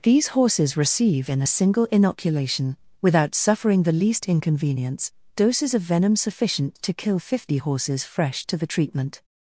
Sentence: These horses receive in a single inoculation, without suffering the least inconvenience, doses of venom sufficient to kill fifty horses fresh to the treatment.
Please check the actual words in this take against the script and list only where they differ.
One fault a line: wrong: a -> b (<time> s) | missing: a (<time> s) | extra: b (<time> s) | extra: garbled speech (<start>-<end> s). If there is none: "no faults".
no faults